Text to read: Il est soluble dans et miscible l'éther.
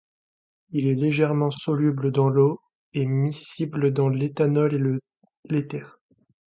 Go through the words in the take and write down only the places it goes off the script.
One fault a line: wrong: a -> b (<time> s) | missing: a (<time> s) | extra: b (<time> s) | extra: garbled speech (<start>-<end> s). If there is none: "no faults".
extra: légèrement (0.9 s)
extra: l'eau (2.3 s)
extra: dans l'éthanol et (3.9 s)